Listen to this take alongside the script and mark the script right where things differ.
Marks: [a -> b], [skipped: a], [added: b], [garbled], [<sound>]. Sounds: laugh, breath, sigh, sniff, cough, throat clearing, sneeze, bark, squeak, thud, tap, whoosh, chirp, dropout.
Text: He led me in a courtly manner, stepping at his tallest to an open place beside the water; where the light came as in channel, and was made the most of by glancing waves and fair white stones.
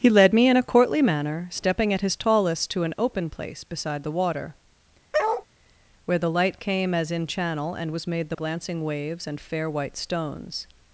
He led me in a courtly manner, stepping at his tallest to an open place beside the water; [bark] where the light came as in channel, and was made the [skipped: most of by] glancing waves and fair white stones.